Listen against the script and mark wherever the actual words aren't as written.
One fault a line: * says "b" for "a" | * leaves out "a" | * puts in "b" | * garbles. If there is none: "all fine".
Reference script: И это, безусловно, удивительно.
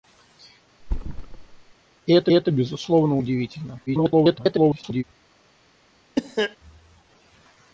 * puts in "это"
* garbles